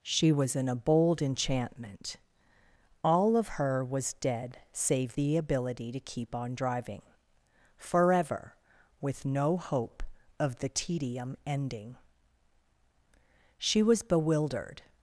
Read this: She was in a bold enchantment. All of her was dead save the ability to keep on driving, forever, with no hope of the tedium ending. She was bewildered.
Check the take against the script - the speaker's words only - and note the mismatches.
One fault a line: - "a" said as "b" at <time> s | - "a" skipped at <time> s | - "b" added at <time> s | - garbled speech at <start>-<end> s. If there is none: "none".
none